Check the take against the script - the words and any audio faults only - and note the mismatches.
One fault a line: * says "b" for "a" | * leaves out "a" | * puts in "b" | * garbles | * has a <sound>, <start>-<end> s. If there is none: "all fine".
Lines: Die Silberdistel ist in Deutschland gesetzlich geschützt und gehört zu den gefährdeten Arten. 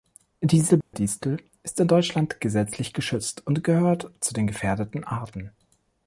* has a dropout, 0.8-0.9 s